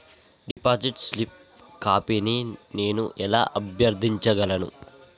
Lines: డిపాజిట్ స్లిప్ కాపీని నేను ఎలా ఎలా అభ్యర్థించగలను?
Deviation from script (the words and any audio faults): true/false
true